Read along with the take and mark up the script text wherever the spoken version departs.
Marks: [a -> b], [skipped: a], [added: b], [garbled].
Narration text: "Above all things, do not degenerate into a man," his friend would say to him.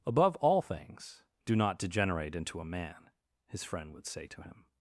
"Above all things, do not degenerate into a man," his friend would say to him.